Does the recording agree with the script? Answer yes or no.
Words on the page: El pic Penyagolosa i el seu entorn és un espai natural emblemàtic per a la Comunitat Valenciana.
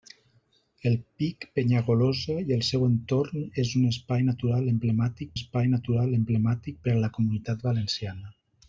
no